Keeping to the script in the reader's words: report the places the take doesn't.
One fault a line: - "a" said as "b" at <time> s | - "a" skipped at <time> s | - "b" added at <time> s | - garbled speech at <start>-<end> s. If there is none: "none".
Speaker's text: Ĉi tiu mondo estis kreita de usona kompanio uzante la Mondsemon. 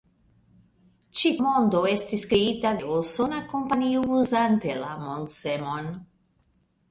- "tiu" skipped at 1.3 s